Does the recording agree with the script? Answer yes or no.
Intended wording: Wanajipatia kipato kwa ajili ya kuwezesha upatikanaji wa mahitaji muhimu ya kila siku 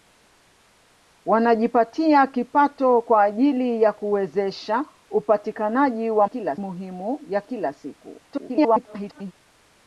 no